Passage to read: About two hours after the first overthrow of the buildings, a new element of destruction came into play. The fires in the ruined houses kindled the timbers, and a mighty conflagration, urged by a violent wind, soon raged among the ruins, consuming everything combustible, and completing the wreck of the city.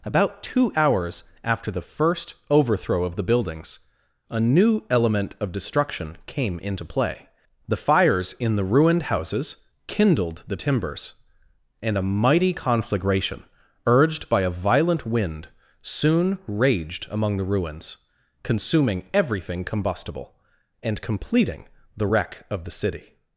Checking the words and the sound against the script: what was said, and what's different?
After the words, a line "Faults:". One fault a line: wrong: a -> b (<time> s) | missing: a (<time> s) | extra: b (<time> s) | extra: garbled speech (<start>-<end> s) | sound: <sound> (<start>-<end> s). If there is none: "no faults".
About two hours after the first overthrow of the buildings, a new element of destruction came into play. The fires in the ruined houses kindled the timbers, and a mighty conflagration, urged by a violent wind, soon raged among the ruins, consuming everything combustible, and completing the wreck of the city.
Faults:
no faults